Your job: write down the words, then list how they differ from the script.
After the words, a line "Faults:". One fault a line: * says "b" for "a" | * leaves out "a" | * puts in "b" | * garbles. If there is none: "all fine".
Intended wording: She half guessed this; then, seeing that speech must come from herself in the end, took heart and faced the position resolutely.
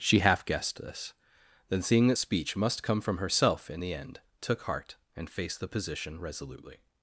She half guessed this; then, seeing that speech must come from herself in the end, took heart and faced the position resolutely.
Faults:
all fine